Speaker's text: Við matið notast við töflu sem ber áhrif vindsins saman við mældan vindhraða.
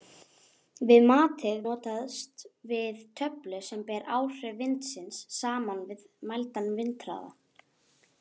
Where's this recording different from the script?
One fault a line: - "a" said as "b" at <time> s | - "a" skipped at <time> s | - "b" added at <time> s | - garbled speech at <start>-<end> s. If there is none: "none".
none